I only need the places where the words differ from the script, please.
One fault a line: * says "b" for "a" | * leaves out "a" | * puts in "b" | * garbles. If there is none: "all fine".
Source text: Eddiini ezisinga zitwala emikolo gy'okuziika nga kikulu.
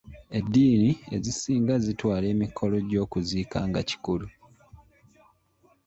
all fine